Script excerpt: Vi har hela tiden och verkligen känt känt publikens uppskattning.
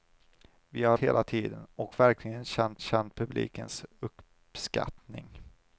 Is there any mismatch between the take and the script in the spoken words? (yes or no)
no